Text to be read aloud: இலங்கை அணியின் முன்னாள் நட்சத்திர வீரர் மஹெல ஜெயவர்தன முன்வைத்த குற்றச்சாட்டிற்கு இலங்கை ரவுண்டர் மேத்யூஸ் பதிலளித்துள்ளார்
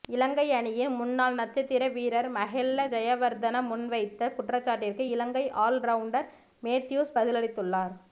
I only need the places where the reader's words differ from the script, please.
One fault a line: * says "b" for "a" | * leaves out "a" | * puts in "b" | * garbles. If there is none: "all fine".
* puts in "ஆல்"